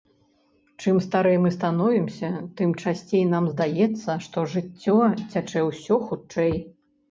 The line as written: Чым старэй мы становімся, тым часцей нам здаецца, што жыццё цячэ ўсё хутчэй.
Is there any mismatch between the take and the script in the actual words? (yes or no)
no